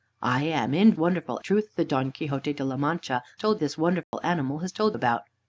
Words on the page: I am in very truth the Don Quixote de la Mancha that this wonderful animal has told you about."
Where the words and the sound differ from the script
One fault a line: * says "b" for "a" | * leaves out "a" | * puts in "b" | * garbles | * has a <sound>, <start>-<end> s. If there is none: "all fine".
* says "wonderful" for "very"
* says "told" for "that"
* has a dropout, 4.0-4.1 s
* leaves out "you"